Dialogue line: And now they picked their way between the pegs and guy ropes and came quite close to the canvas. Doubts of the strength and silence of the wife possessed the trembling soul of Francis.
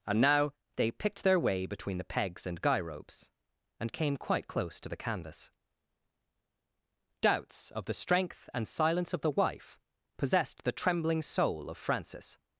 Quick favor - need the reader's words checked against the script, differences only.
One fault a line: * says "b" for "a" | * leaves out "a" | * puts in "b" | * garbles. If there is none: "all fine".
all fine